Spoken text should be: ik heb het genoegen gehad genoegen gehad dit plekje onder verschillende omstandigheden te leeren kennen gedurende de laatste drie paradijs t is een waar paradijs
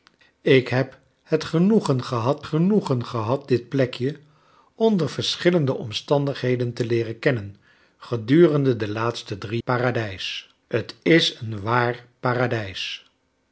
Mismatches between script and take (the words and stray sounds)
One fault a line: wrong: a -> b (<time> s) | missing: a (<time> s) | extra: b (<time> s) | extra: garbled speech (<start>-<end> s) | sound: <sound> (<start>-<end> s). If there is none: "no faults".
no faults